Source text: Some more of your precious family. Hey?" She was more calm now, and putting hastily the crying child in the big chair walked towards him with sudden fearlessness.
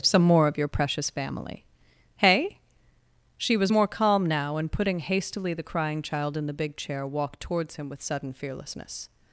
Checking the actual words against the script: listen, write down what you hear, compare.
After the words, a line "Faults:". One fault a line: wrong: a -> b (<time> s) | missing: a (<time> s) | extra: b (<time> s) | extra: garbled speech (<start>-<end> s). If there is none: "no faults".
Some more of your precious family. Hey?" She was more calm now, and putting hastily the crying child in the big chair walked towards him with sudden fearlessness.
Faults:
no faults